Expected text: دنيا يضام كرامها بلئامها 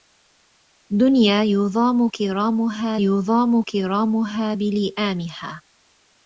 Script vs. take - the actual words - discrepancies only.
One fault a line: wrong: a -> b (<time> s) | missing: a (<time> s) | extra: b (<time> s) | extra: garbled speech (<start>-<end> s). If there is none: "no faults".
extra: يضام كرامها (3.0 s)